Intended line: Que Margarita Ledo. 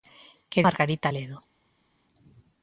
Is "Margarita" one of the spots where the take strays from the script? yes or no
no